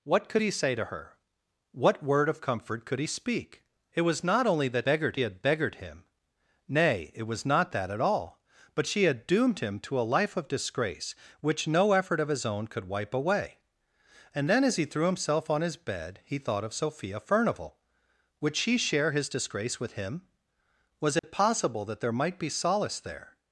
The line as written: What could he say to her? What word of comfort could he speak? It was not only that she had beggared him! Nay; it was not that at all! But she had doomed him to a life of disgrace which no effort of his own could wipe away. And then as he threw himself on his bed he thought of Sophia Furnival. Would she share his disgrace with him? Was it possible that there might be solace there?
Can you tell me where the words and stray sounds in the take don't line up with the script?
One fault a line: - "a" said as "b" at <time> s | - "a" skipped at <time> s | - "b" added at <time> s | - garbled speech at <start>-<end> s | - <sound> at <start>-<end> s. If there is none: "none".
- "she" said as "beggared" at 4.8 s
- dropout at 21.2-21.2 s